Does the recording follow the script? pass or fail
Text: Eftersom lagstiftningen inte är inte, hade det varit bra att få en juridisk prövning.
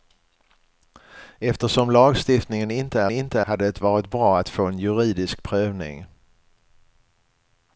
pass